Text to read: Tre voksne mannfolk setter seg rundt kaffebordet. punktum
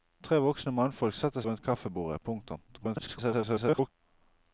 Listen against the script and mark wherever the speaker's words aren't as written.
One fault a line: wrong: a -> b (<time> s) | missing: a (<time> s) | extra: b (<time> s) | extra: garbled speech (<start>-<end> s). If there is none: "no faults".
missing: seg (1.4 s)
extra: garbled speech (2.7-3.9 s)